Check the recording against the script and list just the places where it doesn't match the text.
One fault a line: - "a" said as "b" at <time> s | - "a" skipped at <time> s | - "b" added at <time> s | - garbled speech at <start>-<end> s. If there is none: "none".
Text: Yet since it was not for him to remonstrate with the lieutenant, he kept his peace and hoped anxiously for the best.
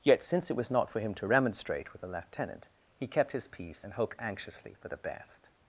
none